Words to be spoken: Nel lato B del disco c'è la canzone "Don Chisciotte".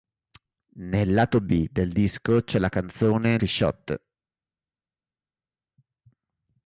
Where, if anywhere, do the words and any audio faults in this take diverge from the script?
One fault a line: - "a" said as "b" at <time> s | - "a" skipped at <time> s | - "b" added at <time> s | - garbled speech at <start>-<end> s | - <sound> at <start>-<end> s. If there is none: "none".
- "Don" skipped at 3.4 s